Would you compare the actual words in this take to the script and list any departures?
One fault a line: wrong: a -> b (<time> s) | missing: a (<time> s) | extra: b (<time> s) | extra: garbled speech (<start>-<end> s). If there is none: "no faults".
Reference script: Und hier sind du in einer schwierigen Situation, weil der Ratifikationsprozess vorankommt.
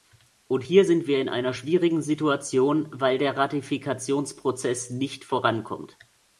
wrong: du -> wir (1.1 s)
extra: nicht (4.9 s)